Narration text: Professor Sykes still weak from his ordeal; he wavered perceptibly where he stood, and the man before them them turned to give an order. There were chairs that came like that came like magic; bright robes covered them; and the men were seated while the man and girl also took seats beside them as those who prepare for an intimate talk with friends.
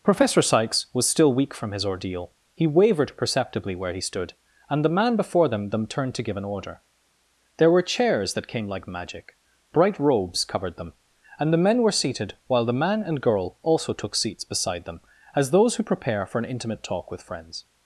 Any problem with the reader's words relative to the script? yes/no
yes